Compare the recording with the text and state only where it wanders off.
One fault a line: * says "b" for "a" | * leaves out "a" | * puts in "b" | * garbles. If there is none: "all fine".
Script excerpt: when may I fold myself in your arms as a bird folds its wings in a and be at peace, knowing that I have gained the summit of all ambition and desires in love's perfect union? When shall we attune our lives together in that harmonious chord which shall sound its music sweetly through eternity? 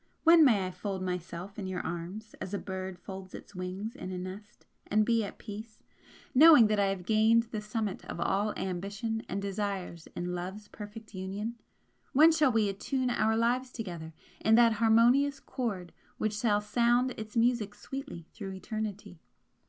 * puts in "nest"